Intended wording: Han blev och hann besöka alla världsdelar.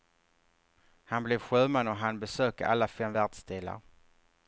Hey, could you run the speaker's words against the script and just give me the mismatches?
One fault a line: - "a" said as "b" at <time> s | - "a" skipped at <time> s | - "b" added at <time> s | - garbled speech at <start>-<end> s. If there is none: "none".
- "sjöman" added at 1.4 s
- "fem" added at 2.9 s